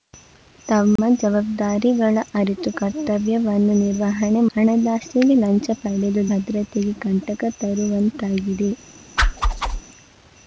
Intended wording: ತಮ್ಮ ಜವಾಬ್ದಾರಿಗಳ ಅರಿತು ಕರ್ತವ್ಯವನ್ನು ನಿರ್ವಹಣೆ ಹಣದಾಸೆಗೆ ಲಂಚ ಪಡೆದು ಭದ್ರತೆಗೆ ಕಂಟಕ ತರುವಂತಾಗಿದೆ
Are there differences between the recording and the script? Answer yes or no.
no